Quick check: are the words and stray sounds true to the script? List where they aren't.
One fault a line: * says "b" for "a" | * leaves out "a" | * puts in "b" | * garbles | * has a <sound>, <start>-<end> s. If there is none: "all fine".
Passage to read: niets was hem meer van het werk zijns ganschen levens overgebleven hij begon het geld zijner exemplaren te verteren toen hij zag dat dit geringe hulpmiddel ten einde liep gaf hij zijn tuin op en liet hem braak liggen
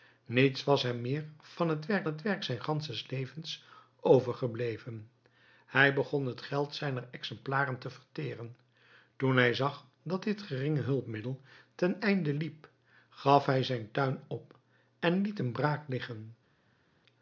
* puts in "het werk"